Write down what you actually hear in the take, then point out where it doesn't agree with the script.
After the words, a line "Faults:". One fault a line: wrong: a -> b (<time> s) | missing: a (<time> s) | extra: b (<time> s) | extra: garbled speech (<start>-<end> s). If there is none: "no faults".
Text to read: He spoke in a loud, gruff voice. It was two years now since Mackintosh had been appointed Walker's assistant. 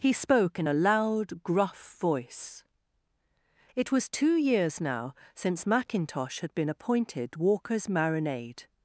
He spoke in a loud, gruff voice. It was two years now since Mackintosh had been appointed Walker's marinade.
Faults:
wrong: assistant -> marinade (7.9 s)